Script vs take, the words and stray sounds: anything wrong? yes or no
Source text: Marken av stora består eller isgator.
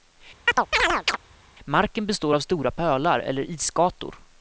yes